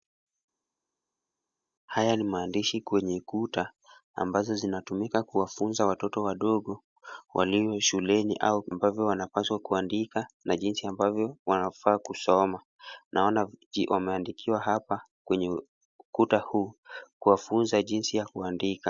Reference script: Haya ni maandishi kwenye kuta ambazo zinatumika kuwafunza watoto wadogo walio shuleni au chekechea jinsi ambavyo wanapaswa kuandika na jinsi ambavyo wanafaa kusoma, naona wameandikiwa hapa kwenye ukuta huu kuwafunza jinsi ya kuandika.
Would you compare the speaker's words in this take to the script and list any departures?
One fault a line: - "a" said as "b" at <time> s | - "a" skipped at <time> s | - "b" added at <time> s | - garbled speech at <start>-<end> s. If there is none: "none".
- "chekechea jinsi" skipped at 8.6 s